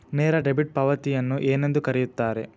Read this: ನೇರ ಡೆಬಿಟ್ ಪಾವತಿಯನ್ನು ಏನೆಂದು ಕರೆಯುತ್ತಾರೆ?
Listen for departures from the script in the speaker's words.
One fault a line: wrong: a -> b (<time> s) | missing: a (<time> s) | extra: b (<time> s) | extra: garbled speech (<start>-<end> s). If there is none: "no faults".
no faults